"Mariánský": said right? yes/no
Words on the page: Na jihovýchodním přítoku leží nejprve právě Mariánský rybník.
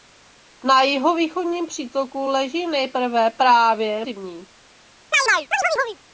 no